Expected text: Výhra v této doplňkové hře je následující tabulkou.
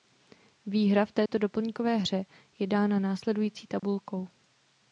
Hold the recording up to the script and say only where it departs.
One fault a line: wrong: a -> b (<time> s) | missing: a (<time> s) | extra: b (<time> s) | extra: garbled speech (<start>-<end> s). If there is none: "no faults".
extra: dána (2.7 s)